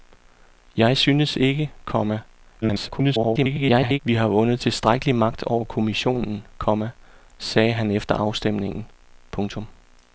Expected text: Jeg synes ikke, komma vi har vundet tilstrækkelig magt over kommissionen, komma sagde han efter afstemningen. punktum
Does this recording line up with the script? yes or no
no